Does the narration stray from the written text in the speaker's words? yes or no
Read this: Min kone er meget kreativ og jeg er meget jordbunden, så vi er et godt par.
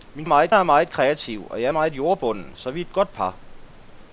yes